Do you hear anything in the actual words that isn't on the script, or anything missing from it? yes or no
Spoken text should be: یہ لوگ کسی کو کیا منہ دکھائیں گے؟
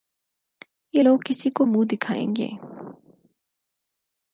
yes